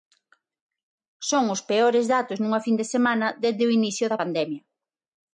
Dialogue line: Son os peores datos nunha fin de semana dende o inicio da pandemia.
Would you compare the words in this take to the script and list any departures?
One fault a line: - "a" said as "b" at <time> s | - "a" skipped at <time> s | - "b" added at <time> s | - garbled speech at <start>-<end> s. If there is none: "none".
none